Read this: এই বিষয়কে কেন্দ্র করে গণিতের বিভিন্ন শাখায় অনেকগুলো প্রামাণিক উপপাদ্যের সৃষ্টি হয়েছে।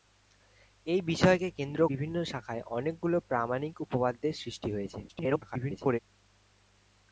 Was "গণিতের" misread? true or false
true